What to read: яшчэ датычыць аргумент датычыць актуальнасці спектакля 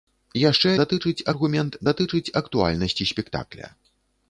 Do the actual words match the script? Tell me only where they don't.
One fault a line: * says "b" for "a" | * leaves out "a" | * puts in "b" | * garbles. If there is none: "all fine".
all fine